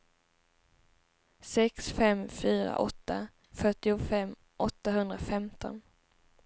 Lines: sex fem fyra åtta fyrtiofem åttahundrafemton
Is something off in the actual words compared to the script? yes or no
no